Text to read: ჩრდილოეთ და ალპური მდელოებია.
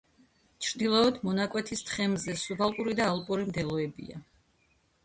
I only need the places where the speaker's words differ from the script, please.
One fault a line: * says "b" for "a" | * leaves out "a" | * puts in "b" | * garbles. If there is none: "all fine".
* puts in "მონაკვეთის თხემზე სუბალპური"